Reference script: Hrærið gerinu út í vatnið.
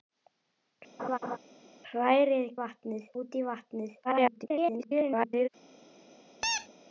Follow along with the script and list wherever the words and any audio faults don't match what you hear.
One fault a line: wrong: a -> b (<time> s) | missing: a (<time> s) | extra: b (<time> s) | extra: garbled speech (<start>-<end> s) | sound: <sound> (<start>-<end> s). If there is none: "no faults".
sound: laugh (1.0-1.4 s)
wrong: gerinu -> vatnið (2.6 s)
extra: garbled speech (4.0-5.5 s)
sound: squeak (6.4-6.7 s)